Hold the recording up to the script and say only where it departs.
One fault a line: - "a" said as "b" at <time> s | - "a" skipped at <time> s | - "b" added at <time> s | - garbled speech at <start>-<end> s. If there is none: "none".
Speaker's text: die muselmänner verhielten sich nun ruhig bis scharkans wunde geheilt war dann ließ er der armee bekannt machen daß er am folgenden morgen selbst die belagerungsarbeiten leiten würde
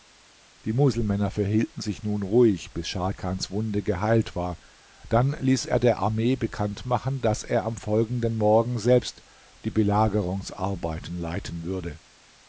none